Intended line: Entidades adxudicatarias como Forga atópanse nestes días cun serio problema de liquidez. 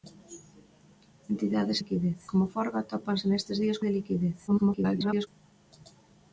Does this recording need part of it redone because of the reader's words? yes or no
yes